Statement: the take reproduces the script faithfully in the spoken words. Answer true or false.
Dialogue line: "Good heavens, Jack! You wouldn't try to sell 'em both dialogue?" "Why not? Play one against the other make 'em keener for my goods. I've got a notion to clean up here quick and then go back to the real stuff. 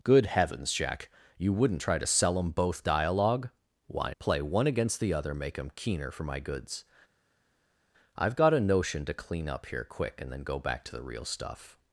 false